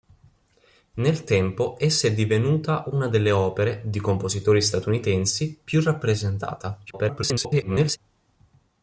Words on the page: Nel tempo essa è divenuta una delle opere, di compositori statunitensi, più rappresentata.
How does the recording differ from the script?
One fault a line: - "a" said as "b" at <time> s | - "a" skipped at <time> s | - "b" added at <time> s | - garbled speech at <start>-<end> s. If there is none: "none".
- garbled speech at 6.9-8.0 s